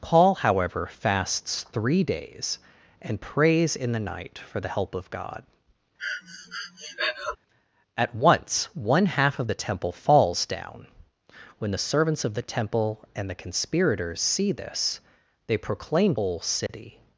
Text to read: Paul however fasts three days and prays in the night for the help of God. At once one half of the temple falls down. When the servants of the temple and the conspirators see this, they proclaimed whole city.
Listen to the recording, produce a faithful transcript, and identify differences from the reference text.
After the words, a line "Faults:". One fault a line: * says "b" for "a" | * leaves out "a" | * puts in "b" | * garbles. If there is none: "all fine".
Paul however fasts three days and prays in the night for the help of God. At once one half of the temple falls down. When the servants of the temple and the conspirators see this, they proclaimed whole city.
Faults:
all fine